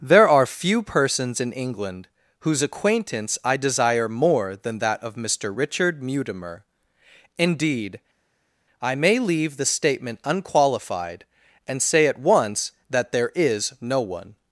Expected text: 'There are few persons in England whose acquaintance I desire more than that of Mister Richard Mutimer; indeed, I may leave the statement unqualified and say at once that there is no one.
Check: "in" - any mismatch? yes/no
no